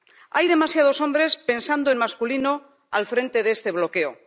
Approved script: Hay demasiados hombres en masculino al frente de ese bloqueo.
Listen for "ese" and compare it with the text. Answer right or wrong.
wrong